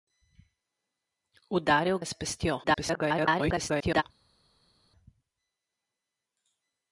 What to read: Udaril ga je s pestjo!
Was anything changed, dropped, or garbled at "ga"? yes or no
yes